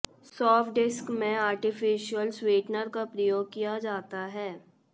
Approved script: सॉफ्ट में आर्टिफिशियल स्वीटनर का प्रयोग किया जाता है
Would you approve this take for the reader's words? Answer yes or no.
no